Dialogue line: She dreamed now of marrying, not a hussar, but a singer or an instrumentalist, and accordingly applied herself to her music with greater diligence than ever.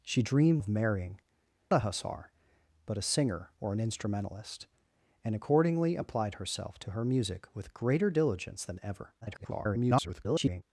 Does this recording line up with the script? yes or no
no